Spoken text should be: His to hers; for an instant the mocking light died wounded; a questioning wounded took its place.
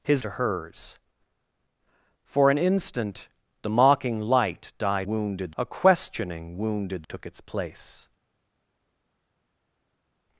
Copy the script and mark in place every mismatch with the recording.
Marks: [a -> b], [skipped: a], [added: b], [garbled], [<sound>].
His to hers; for an instant the mocking light died wounded; a questioning wounded took its place.